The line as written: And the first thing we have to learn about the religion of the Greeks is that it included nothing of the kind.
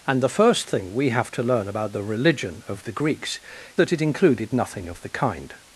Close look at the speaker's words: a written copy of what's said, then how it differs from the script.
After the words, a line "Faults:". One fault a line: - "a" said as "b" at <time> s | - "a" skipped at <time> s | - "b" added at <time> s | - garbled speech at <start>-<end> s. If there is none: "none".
And the first thing we have to learn about the religion of the Greeks that it included nothing of the kind.
Faults:
- "is" skipped at 3.4 s